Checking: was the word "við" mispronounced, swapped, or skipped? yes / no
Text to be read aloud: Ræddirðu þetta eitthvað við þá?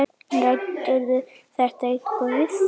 no